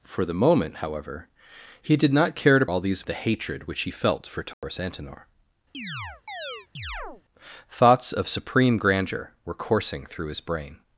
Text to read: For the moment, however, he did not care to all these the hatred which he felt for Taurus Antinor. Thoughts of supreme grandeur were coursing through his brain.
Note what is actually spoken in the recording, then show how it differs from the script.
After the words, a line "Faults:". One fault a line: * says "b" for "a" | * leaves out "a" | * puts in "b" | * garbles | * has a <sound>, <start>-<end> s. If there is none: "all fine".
For the moment, however, he did not care to all these the hatred which he felt for Taurus Antinor. Thoughts of supreme grandeur were coursing through his brain.
Faults:
* has a dropout, 4.5-4.6 s
* has a chirp, 5.7-7.2 s